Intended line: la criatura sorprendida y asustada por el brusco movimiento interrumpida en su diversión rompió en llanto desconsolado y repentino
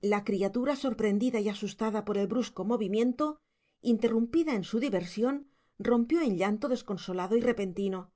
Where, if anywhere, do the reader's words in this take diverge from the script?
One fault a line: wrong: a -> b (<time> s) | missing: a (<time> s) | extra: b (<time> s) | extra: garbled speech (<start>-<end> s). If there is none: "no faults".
no faults